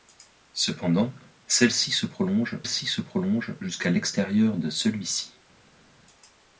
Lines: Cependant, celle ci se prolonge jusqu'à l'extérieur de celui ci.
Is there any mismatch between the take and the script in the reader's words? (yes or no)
yes